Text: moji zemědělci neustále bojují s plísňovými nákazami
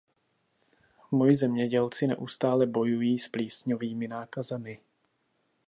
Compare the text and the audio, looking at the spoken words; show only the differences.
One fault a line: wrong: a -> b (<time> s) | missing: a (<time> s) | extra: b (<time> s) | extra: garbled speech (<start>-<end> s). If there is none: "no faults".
no faults